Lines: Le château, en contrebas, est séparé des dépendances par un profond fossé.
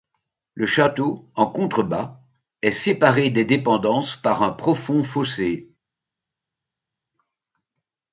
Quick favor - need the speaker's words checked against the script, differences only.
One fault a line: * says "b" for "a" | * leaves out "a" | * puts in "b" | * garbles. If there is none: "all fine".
all fine